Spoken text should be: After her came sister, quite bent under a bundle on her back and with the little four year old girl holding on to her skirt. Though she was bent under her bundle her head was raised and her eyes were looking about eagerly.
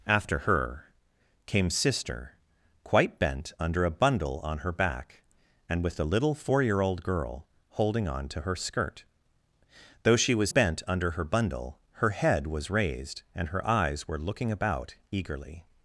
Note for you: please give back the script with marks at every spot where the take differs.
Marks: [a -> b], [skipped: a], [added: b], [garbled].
After her came sister, quite bent under a bundle on her back and with the little four year old girl holding on to her skirt. Though she was bent under her bundle her head was raised and her eyes were looking about eagerly.